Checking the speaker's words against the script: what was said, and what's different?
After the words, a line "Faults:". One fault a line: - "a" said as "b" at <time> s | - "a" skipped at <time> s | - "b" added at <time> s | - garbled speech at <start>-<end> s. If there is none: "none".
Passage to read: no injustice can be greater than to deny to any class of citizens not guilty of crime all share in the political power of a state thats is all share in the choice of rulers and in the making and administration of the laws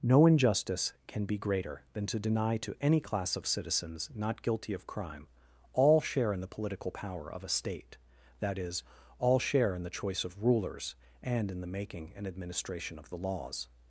no injustice can be greater than to deny to any class of citizens not guilty of crime all share in the political power of a state that is all share in the choice of rulers and in the making and administration of the laws
Faults:
- "thats" said as "that" at 8.4 s